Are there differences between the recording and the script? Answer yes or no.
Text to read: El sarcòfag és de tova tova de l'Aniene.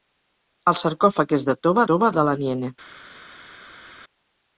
no